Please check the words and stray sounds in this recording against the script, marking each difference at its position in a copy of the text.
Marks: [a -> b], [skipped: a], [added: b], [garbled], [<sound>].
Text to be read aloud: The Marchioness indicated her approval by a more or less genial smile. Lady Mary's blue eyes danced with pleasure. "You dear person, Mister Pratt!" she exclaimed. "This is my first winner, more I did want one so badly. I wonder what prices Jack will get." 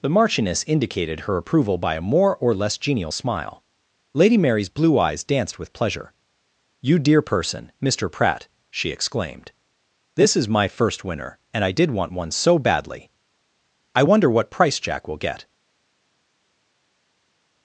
The Marchioness indicated her approval by a more or less genial smile. Lady Mary's blue eyes danced with pleasure. "You dear person, Mister Pratt!" she exclaimed. "This is my first winner, [more -> and] I did want one so badly. I wonder what [prices -> price] Jack will get."